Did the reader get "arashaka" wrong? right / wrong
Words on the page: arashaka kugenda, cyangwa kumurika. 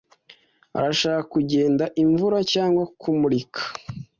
right